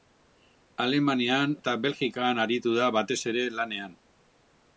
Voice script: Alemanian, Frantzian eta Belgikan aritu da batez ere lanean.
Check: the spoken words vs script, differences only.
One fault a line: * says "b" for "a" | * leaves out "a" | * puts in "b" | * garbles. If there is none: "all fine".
* leaves out "Frantzian"